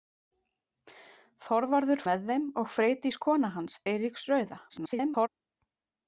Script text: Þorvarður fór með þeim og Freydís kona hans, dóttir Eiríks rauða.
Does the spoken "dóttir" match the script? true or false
false